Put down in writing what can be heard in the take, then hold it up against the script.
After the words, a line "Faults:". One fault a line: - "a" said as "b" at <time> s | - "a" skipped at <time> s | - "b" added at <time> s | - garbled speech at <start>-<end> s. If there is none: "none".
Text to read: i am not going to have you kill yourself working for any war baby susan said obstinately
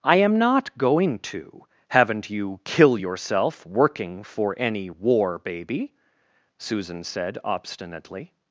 i am not going to haven't you kill yourself working for any war baby susan said obstinately
Faults:
- "have" said as "haven't" at 1.9 s